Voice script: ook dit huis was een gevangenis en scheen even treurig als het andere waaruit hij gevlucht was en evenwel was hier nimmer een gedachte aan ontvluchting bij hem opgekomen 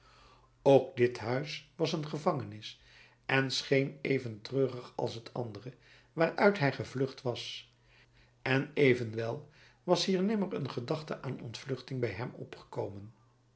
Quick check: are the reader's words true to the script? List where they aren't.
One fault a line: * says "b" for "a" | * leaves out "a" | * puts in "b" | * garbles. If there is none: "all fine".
all fine